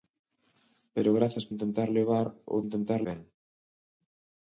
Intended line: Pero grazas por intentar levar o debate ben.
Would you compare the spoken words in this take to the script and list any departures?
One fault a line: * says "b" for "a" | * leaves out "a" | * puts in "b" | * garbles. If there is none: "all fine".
* leaves out "por"
* says "intentar" for "debate"